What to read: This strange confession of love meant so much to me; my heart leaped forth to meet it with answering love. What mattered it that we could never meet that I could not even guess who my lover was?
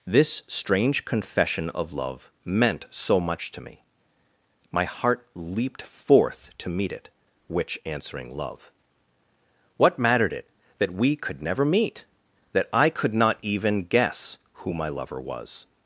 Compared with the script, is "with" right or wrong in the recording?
wrong